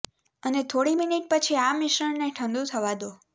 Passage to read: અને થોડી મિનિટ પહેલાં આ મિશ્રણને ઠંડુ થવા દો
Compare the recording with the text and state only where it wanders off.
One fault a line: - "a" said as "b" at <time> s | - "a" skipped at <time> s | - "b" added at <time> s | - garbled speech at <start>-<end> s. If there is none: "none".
- "પહેલાં" said as "પછી" at 1.3 s